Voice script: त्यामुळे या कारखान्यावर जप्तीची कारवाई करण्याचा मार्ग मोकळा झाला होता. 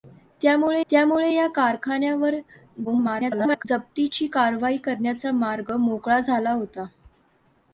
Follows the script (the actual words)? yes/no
no